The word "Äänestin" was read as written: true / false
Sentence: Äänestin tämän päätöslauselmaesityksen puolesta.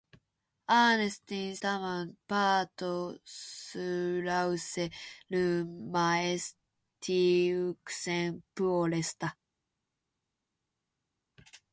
true